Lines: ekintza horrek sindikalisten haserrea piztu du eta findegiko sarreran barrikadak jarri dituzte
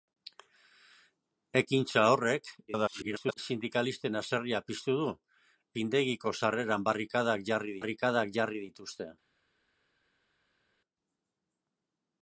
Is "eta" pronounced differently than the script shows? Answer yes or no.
yes